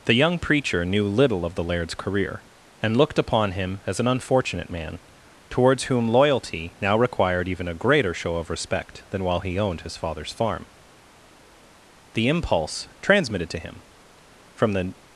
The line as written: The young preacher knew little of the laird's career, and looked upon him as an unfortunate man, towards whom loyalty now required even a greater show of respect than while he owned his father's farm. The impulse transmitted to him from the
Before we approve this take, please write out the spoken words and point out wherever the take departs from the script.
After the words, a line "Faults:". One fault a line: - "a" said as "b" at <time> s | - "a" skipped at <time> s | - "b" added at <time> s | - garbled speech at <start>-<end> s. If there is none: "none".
The young preacher knew little of the laird's career, and looked upon him as an unfortunate man, towards whom loyalty now required even a greater show of respect than while he owned his father's farm. The impulse transmitted to him from the
Faults:
none